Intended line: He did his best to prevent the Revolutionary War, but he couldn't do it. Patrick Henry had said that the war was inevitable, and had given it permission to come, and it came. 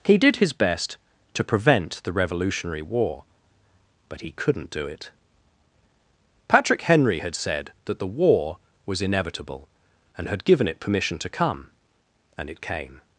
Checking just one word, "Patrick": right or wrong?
right